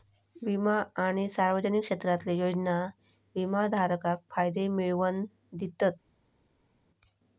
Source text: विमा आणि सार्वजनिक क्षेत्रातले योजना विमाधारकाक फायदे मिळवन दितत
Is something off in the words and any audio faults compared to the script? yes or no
no